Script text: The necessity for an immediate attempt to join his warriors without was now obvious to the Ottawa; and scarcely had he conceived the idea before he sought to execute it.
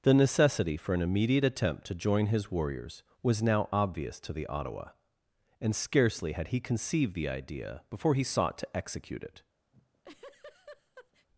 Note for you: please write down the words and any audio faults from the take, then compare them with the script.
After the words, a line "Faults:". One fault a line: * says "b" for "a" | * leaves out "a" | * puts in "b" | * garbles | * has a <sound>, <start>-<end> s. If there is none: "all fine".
The necessity for an immediate attempt to join his warriors was now obvious to the Ottawa; and scarcely had he conceived the idea before he sought to execute it.
Faults:
* leaves out "without"
* has a laugh, 9.7-11.3 s